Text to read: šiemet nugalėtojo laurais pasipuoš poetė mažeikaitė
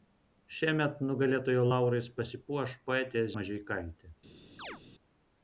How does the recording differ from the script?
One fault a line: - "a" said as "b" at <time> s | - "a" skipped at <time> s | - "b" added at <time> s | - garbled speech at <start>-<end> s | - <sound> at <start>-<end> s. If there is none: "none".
- chirp at 4.6-4.8 s